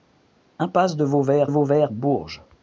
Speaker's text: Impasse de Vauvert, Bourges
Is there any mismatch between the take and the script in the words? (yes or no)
yes